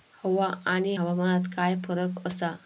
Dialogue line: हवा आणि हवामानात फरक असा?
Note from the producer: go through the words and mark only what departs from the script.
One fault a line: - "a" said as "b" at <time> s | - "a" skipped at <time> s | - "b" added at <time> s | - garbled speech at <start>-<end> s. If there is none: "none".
- "काय" added at 1.5 s